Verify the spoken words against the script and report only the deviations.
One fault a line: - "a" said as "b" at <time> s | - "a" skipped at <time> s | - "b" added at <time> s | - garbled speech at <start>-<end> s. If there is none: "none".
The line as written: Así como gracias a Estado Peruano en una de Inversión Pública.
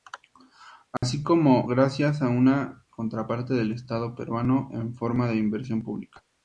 - "una contraparte del" added at 2.3 s
- "una" said as "forma" at 4.9 s